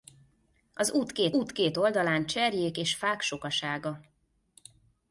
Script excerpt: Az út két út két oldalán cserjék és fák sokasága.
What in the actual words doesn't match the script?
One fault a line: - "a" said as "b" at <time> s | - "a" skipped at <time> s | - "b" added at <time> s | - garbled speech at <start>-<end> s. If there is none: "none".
none